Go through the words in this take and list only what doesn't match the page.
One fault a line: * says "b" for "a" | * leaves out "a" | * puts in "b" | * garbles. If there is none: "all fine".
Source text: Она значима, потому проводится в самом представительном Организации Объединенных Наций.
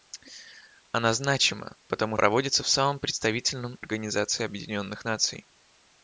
all fine